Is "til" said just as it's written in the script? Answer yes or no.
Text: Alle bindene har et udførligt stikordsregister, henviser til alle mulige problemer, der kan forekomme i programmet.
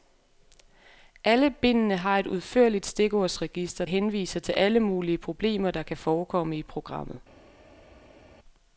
yes